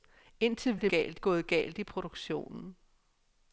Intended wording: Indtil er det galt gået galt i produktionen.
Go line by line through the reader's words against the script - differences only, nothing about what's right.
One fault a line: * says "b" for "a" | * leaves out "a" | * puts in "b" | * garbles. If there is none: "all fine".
all fine